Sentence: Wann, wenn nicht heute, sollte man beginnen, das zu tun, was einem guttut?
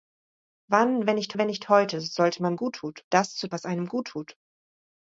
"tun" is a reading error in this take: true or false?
true